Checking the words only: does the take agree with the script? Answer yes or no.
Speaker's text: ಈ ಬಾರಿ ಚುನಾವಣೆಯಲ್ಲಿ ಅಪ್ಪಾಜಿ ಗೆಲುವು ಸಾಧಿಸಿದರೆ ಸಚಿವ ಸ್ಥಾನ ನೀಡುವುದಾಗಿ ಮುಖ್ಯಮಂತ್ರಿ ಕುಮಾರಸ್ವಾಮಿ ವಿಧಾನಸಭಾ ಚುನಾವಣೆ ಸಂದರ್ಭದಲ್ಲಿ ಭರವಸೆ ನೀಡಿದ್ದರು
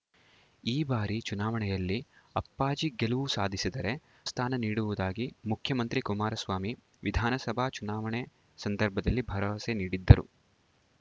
no